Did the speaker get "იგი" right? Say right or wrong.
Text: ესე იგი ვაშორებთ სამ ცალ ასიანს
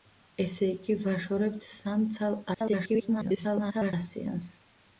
right